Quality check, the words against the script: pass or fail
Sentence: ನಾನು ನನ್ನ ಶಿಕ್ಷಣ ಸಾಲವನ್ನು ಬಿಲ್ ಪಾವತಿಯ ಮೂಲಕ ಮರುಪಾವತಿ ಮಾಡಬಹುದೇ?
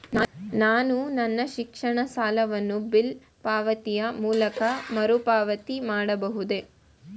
pass